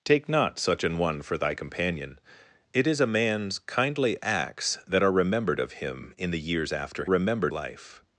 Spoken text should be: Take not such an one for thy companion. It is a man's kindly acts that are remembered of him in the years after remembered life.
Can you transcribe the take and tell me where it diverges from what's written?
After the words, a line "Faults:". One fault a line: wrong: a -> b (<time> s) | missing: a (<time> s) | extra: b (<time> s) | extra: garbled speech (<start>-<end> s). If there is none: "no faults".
Take not such an one for thy companion. It is a man's kindly acts that are remembered of him in the years after remembered life.
Faults:
no faults